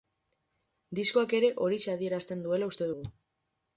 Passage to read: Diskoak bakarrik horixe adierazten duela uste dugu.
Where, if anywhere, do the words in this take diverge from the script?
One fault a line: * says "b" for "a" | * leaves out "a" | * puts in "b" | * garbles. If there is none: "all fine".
* says "ere" for "bakarrik"